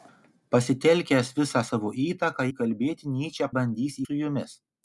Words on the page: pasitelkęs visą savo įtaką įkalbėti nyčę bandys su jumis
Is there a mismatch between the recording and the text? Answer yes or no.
no